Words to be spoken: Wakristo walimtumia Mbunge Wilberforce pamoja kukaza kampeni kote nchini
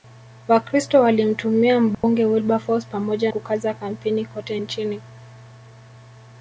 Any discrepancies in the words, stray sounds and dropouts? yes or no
yes